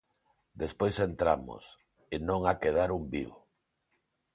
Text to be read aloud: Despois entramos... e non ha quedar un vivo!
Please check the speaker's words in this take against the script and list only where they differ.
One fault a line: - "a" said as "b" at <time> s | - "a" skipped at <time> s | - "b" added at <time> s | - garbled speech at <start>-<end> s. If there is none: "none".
none